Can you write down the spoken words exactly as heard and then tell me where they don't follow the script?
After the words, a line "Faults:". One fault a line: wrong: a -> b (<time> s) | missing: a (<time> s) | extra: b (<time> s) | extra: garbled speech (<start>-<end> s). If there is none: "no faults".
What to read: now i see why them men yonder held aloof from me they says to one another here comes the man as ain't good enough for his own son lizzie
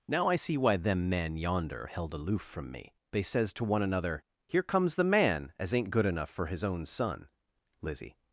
now i see why them men yonder held aloof from me they says to one another here comes the man as ain't good enough for his own son lizzie
Faults:
no faults